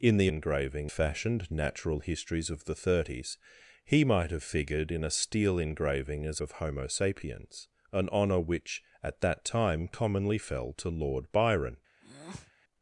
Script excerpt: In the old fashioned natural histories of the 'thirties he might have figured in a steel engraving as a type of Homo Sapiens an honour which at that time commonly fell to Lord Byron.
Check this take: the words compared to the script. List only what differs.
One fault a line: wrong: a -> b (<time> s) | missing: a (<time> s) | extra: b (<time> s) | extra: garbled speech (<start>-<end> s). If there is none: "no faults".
wrong: old -> engraving (0.3 s)
missing: a type (6.4 s)